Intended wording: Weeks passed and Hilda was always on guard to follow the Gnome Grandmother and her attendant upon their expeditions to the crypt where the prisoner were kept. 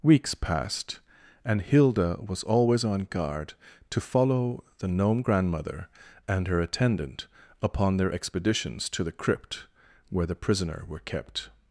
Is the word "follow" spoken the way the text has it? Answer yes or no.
yes